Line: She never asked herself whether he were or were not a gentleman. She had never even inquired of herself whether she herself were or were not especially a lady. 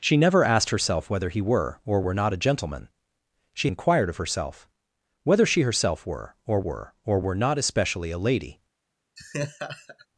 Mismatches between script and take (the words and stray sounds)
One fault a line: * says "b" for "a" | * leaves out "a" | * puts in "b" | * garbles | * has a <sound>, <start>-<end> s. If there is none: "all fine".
* leaves out "had never even"
* puts in "or were"
* has a laugh, 9.2-10.1 s